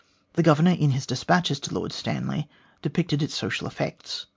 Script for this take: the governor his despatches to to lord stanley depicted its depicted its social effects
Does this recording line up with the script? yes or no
no